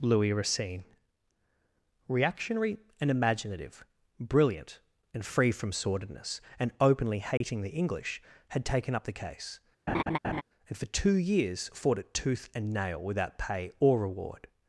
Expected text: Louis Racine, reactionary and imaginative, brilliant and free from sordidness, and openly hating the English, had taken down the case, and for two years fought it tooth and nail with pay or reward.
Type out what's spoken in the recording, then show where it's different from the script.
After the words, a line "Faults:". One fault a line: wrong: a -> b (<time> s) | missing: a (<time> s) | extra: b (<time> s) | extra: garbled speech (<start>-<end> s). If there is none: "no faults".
Louis Racine, reactionary and imaginative, brilliant and free from sordidness, and openly hating the English, had taken up the case, and for two years fought it tooth and nail without pay or reward.
Faults:
wrong: down -> up (8.9 s)
wrong: with -> without (13.0 s)